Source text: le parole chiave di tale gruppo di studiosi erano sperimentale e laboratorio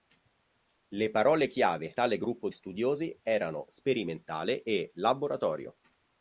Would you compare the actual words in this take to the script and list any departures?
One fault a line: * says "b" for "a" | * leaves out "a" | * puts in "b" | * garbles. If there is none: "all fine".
* leaves out "di"
* leaves out "di"